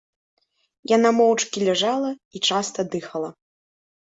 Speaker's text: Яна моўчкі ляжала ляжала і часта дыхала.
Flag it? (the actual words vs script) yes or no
yes